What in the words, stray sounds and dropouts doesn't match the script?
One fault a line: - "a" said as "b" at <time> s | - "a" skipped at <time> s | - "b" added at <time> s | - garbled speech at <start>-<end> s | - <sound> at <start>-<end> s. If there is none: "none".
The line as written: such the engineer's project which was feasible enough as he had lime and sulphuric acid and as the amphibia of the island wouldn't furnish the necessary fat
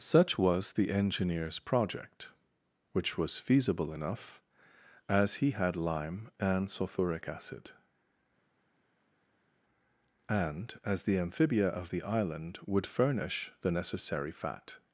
- "was" added at 0.3 s
- "wouldn't" said as "would" at 12.7 s